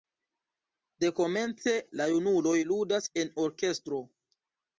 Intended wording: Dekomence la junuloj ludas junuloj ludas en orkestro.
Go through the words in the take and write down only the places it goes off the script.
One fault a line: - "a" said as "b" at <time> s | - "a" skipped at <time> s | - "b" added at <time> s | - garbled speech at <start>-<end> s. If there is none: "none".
- "junuloj ludas" skipped at 3.1 s